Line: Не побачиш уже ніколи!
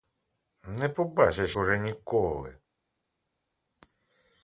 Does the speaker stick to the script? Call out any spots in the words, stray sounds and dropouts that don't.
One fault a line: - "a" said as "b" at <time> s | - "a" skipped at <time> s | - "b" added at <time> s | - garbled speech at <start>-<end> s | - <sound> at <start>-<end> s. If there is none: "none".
none